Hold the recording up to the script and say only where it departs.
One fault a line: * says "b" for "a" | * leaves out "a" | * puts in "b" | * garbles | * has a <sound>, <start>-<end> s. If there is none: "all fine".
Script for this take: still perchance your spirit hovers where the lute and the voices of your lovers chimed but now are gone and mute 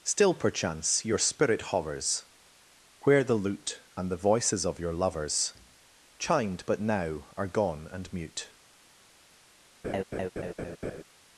* has a laugh, 9.8-11.0 s